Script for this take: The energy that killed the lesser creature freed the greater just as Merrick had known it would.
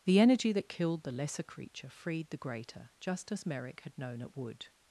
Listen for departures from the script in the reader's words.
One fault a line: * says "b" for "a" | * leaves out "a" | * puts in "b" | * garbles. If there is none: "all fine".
all fine